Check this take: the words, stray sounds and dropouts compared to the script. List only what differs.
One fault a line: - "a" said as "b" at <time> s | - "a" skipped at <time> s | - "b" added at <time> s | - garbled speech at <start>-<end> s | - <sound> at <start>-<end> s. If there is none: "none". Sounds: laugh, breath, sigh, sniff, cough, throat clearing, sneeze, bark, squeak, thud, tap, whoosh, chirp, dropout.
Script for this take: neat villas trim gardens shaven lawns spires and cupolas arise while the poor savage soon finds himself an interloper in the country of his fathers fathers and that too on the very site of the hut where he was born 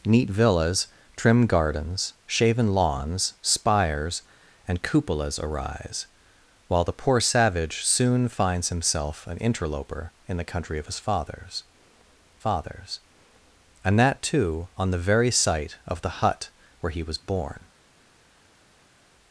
none